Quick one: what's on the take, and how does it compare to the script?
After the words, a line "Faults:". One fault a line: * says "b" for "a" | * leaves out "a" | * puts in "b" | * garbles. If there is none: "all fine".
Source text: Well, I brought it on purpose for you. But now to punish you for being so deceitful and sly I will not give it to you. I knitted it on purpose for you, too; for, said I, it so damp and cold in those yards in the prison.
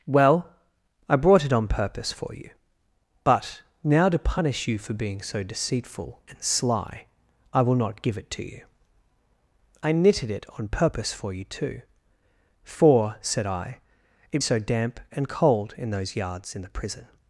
Well, I brought it on purpose for you. But now to punish you for being so deceitful and sly I will not give it to you. I knitted it on purpose for you, too; for, said I, it so damp and cold in those yards in the prison.
Faults:
all fine